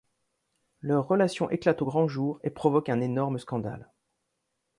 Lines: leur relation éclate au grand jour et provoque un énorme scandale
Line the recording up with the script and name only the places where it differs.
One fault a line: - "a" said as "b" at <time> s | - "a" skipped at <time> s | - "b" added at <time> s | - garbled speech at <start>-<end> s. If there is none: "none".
none